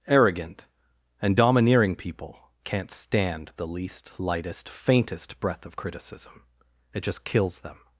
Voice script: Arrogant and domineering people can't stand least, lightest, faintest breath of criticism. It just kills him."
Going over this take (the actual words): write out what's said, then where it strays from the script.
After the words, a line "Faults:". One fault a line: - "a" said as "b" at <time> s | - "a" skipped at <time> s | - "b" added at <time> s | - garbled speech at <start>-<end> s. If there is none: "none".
Arrogant and domineering people can't stand the least, lightest, faintest breath of criticism. It just kills them."
Faults:
- "the" added at 3.6 s
- "him" said as "them" at 7.6 s